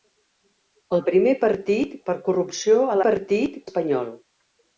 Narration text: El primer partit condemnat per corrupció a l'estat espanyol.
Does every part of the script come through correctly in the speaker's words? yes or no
no